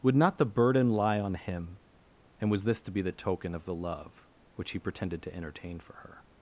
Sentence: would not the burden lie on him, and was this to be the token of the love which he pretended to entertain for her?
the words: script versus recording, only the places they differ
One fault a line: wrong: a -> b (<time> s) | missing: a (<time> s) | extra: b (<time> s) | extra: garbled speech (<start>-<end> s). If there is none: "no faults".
no faults